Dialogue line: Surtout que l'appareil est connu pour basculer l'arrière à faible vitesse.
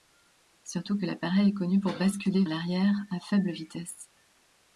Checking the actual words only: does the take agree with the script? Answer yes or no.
yes